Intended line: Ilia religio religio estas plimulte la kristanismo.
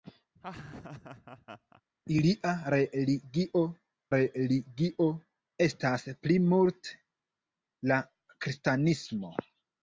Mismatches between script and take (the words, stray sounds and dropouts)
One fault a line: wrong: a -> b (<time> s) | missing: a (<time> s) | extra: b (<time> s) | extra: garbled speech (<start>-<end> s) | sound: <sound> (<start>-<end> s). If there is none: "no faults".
sound: laugh (0.4-1.8 s)